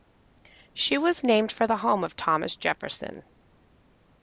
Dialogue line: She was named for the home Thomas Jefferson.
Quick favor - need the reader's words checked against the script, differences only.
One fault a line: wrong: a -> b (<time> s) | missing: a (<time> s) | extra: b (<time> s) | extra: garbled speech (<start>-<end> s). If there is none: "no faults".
extra: of (2.0 s)